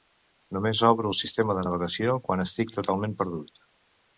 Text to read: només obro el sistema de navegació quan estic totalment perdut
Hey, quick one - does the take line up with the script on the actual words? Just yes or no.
yes